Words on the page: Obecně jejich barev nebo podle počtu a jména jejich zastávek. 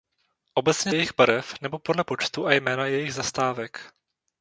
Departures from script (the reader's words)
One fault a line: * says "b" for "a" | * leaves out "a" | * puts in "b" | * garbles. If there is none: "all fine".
all fine